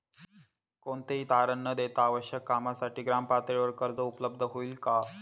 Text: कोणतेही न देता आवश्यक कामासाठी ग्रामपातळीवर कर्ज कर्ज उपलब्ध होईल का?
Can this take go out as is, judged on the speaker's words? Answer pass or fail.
fail